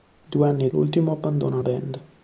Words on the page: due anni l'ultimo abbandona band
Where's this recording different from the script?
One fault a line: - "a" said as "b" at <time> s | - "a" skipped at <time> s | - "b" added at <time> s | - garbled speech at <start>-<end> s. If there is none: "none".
none